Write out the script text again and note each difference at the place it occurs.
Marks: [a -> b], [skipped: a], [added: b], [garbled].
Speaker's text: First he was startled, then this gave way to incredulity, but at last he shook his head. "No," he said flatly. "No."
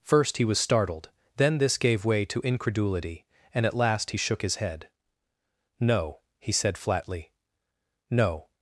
First he was startled, then this gave way to incredulity, [but -> and] at last he shook his head. "No," he said flatly. "No."